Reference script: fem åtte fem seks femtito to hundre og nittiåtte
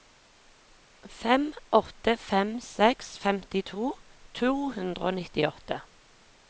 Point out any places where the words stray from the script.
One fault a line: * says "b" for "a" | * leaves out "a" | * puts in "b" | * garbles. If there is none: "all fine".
all fine